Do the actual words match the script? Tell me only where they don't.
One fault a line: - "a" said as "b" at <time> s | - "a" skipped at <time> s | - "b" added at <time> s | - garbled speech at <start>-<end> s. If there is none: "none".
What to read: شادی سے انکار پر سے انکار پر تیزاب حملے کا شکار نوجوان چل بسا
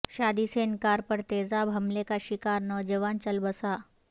- "سے انکار پر" skipped at 1.2 s